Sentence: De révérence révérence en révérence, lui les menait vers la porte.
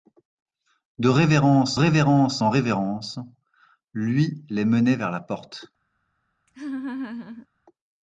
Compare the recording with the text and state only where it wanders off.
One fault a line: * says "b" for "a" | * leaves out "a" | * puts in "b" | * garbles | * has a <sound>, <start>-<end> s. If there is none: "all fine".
* has a laugh, 6.5-7.5 s